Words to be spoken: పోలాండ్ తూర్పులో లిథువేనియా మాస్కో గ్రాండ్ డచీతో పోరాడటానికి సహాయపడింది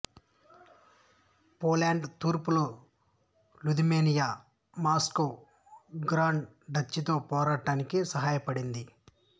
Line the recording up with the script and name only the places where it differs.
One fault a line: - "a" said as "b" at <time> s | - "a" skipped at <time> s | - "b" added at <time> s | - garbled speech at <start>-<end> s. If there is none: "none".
none